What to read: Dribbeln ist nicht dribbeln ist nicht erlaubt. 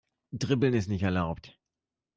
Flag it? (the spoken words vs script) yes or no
yes